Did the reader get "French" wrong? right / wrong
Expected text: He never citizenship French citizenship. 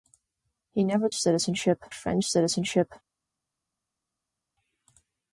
right